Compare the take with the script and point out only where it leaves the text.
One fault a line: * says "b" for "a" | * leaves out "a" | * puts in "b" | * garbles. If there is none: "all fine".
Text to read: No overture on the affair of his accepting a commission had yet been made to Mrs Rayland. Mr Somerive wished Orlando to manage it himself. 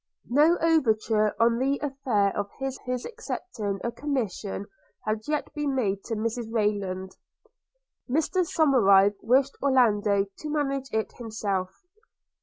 * puts in "his"